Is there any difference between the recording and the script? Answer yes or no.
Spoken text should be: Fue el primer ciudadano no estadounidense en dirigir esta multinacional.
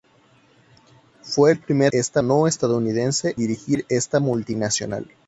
yes